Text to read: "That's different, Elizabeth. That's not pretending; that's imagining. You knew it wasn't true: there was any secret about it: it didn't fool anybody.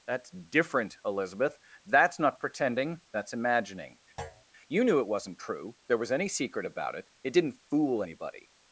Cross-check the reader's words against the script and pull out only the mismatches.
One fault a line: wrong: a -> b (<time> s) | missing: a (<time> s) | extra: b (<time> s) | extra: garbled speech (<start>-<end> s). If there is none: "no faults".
no faults